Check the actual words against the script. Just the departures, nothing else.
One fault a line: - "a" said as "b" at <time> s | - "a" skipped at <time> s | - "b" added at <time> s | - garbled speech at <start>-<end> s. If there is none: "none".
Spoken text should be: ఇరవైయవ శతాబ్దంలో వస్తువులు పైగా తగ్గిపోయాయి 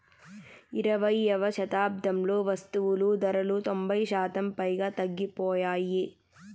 - "ధరలు తొంభై శాతం" added at 3.2 s